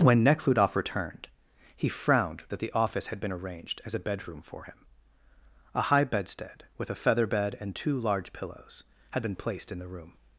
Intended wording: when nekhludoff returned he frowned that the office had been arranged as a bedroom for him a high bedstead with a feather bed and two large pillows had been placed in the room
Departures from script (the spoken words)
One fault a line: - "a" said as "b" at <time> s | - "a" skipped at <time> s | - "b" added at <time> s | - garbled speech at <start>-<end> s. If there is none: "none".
none